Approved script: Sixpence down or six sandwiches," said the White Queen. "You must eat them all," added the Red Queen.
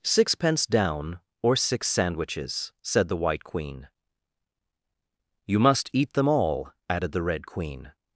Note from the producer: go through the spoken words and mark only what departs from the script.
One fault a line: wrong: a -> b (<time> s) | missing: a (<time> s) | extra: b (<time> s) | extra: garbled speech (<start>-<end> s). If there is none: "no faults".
no faults